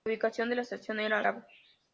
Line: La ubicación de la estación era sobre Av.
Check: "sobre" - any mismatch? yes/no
yes